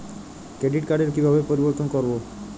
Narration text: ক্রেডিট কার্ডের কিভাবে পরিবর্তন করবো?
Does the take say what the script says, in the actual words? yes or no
yes